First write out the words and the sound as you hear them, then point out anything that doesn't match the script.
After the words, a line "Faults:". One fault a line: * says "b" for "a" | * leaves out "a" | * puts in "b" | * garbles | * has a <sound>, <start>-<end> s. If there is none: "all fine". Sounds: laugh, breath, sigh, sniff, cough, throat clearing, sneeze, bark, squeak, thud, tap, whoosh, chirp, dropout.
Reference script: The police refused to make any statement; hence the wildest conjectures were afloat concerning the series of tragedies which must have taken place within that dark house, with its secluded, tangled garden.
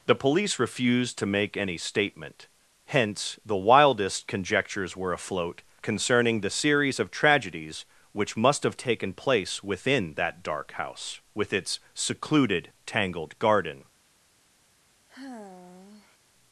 The police refused to make any statement; hence the wildest conjectures were afloat concerning the series of tragedies which must have taken place within that dark house, with its secluded, tangled garden.
Faults:
* has a sigh, 15.1-16.2 s